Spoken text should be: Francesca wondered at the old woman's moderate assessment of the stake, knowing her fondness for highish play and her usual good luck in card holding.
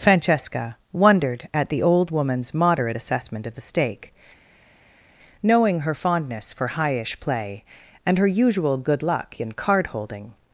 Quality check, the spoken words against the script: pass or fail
pass